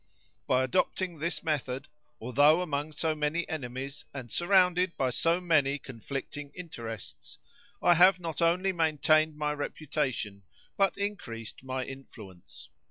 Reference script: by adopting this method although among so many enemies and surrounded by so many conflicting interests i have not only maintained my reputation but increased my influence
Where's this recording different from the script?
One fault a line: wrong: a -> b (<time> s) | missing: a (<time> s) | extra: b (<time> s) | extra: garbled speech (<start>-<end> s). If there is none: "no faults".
no faults